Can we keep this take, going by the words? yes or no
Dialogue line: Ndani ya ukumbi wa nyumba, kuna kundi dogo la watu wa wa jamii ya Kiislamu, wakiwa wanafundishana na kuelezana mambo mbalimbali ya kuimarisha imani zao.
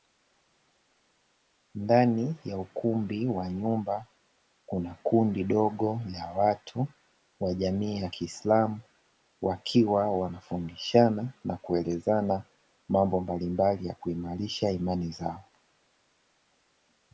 no